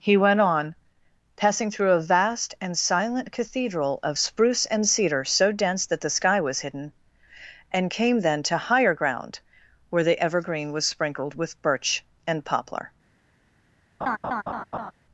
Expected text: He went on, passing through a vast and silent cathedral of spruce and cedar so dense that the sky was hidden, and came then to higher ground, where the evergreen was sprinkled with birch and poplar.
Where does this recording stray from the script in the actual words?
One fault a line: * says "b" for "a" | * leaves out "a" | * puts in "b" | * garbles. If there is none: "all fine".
all fine